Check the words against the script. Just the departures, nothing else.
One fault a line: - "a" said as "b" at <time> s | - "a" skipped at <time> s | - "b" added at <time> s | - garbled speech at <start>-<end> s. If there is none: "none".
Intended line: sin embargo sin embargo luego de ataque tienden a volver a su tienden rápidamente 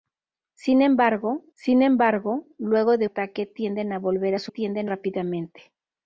none